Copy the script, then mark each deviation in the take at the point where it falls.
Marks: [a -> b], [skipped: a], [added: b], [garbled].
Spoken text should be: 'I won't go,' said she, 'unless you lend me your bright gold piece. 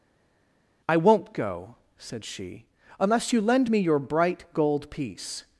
'I won't go,' said she, 'unless you lend me your bright gold piece.